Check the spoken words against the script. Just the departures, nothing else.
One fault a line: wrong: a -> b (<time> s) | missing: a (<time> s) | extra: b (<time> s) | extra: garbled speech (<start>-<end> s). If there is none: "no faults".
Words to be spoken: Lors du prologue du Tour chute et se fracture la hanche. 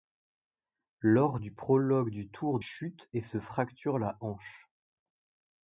no faults